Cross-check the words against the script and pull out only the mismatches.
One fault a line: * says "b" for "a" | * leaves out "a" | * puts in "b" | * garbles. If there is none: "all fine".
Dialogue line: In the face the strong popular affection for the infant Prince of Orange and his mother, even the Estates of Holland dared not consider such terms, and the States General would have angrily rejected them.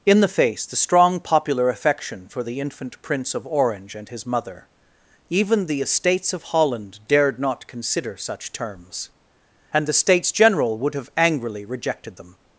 all fine